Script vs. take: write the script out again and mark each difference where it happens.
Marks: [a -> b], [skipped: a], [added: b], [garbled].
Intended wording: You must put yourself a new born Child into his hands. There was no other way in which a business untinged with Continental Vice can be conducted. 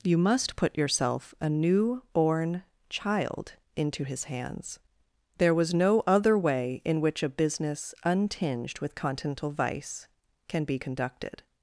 You must put yourself a new born Child into his hands. There was no other way in which a business untinged with Continental Vice can be conducted.